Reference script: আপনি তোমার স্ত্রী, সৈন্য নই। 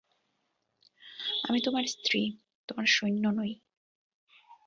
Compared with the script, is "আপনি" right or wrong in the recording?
wrong